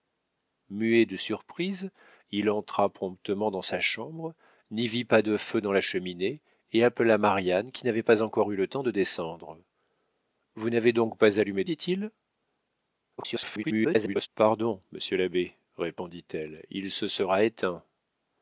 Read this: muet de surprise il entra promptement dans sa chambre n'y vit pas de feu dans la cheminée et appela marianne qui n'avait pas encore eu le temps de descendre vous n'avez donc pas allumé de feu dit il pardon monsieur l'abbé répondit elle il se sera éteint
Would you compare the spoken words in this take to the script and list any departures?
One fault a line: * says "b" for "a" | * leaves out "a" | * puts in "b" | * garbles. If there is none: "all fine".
* leaves out "de feu"
* garbles